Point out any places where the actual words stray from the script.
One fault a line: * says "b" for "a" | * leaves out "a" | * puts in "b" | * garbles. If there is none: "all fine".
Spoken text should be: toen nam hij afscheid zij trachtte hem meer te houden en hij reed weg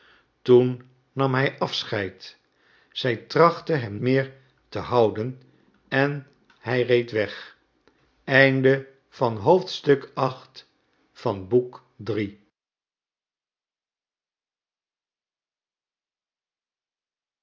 all fine